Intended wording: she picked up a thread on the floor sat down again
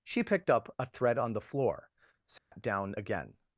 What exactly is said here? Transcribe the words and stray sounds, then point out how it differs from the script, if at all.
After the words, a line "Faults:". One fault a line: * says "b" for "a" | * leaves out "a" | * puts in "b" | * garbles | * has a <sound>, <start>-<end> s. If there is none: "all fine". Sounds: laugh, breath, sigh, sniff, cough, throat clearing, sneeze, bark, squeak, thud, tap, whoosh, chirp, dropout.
she picked up a thread on the floor sat down again
Faults:
* has a dropout, 2.4-2.5 s